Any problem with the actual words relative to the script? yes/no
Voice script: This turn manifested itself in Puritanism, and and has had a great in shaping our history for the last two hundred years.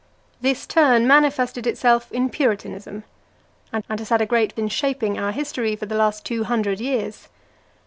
no